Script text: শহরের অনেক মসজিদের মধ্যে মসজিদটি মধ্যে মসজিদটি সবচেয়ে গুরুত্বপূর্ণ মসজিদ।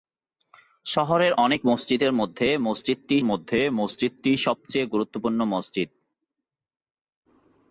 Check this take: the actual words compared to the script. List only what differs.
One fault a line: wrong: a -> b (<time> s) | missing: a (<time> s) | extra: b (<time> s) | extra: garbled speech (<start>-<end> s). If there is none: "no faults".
no faults